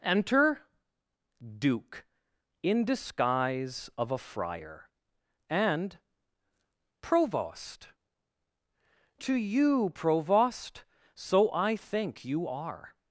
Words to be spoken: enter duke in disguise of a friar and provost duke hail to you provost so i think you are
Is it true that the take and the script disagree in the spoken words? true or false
true